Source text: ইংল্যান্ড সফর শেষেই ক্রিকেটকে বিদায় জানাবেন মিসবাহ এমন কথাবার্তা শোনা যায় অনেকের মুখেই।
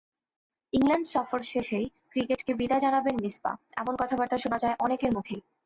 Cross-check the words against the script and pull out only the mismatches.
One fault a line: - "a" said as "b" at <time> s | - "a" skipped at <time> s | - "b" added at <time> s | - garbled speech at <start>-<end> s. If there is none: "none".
none